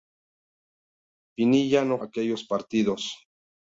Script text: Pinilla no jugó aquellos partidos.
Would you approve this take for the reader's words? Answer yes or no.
no